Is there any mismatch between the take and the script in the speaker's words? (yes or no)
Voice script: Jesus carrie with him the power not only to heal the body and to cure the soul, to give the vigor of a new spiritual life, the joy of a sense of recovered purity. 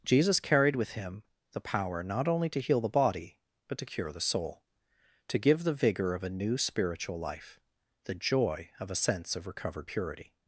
yes